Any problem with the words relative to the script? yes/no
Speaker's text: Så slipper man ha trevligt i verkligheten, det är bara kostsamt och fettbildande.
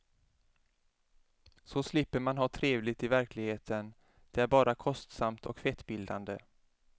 no